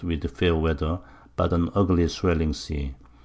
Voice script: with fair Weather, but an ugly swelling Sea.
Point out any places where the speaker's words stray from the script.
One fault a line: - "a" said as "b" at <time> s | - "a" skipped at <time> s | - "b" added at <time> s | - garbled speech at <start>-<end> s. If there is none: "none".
none